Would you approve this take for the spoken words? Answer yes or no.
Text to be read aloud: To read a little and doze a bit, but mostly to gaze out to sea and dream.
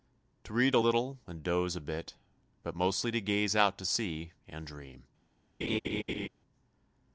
yes